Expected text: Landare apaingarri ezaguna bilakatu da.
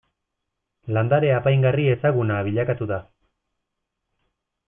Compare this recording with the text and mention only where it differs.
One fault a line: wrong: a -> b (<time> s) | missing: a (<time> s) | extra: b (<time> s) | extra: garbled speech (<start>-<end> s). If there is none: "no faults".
no faults